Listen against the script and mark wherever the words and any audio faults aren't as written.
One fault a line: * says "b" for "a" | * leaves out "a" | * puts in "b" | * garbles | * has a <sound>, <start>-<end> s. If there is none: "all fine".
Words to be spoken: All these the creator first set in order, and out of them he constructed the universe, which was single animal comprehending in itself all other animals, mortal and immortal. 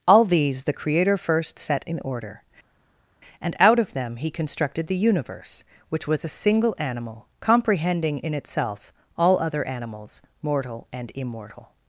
* puts in "a"